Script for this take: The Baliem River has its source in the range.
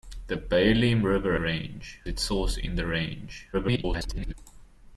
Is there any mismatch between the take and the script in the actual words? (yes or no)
yes